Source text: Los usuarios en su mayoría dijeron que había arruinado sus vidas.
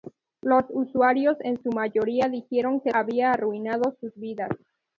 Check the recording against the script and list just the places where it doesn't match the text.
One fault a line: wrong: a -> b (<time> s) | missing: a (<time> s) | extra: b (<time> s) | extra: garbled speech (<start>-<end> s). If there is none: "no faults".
no faults